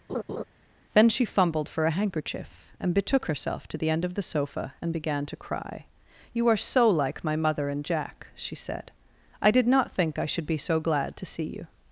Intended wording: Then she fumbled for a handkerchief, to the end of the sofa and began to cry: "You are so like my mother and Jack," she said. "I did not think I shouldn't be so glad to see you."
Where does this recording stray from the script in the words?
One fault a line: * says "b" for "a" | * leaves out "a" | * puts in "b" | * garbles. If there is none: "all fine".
* puts in "and betook herself"
* says "should" for "shouldn't"